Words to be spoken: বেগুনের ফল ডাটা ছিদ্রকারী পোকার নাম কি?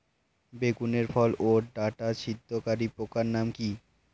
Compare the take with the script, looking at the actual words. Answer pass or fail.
fail